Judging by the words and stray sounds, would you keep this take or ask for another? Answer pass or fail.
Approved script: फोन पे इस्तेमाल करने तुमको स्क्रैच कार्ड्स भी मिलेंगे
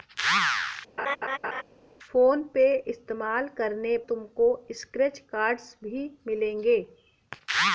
fail